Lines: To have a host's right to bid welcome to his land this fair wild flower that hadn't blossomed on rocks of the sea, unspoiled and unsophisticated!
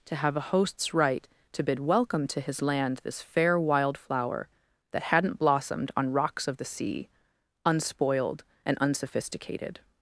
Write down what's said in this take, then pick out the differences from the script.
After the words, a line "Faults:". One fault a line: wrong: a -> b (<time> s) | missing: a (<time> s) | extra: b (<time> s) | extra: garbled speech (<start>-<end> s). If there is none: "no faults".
To have a host's right to bid welcome to his land this fair wild flower that hadn't blossomed on rocks of the sea, unspoiled and unsophisticated!
Faults:
no faults